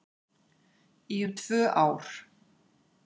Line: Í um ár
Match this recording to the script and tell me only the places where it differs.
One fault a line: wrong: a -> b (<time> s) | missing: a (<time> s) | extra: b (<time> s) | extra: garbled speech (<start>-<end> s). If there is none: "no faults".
extra: tvö (1.4 s)